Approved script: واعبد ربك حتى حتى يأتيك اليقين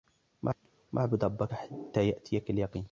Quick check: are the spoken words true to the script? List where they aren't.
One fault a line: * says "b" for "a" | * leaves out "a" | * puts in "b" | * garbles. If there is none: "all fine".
* leaves out "حتى"